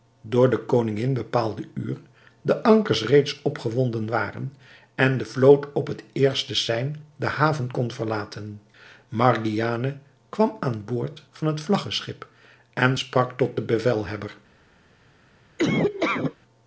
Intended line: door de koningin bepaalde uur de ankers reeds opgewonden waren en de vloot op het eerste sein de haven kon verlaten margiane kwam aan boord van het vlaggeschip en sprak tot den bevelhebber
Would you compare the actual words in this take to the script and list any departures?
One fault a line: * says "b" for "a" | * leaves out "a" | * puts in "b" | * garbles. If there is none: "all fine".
all fine